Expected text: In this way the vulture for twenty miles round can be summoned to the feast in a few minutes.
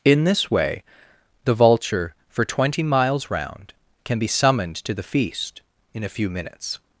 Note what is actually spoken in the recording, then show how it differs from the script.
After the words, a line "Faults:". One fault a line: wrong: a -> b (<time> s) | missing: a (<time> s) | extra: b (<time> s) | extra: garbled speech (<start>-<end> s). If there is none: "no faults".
In this way the vulture for twenty miles round can be summoned to the feast in a few minutes.
Faults:
no faults